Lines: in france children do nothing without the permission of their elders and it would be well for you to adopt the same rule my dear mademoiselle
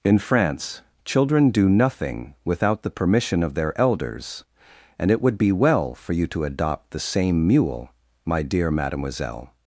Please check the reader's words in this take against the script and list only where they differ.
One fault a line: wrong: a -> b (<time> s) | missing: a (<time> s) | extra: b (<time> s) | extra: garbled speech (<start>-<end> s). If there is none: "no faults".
wrong: rule -> mule (7.4 s)